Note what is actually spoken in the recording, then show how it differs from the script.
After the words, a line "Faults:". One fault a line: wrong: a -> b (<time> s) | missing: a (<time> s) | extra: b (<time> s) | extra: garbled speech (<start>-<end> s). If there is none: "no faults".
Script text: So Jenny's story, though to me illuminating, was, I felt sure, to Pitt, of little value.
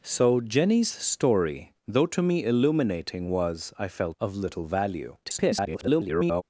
So Jenny's story, though to me illuminating, was, I felt of little value. [garbled]
Faults:
missing: sure to Pitt (4.2 s)
extra: garbled speech (5.2-6.4 s)